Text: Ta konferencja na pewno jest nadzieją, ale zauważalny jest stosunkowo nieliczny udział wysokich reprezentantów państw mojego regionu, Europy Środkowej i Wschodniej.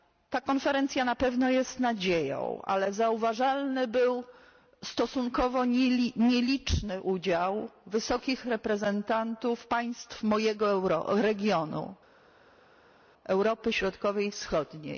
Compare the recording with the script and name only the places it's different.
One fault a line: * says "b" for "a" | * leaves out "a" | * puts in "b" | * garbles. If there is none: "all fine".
* says "był" for "jest"